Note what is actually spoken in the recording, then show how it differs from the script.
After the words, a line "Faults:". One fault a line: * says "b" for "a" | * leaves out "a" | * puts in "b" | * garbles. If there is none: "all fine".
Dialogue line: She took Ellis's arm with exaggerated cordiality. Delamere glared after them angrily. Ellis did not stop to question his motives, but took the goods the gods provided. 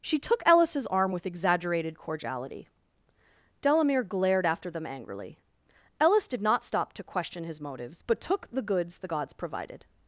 She took Ellis's arm with exaggerated cordiality. Delamere glared after them angrily. Ellis did not stop to question his motives, but took the goods the gods provided.
Faults:
all fine